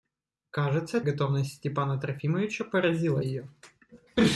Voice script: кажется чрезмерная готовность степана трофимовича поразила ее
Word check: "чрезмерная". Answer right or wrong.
wrong